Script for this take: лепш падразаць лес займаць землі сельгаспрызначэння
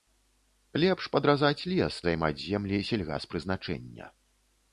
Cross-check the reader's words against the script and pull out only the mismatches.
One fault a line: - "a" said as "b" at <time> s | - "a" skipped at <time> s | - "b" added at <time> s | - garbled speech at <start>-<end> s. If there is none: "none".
none